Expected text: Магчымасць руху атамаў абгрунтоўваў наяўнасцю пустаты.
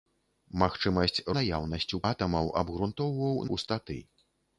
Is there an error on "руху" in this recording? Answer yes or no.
yes